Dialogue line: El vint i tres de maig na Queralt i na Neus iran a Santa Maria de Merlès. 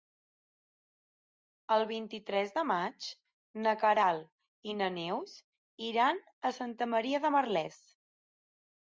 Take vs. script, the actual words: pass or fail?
pass